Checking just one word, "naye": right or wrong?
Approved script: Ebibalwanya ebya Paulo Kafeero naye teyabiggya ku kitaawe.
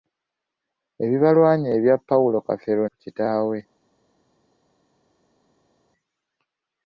wrong